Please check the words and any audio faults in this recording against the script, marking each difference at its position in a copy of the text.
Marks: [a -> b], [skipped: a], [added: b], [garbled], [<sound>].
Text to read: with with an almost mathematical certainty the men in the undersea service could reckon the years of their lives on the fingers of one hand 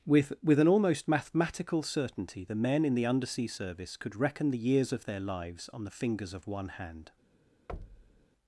with with an almost mathematical certainty the men in the undersea service could reckon the years of their lives on the fingers of one hand [thud]